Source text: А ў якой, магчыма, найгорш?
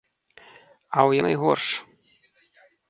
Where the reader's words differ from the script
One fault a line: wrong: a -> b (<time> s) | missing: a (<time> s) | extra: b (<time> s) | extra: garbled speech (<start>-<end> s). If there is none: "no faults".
missing: якой магчыма (1.1 s)